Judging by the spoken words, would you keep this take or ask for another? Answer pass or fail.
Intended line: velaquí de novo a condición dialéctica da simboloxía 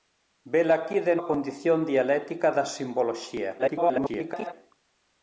fail